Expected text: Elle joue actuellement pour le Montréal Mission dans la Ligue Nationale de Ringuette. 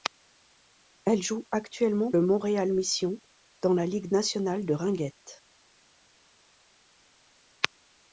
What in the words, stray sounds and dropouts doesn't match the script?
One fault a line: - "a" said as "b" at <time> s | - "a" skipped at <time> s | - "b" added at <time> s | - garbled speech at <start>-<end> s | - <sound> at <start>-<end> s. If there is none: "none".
- "pour" skipped at 2.1 s